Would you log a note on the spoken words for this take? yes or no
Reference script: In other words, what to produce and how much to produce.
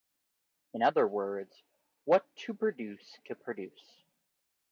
yes